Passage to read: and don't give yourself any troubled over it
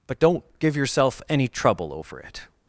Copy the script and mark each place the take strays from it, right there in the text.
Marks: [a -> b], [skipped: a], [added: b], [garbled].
[and -> but] don't give yourself any [troubled -> trouble] over it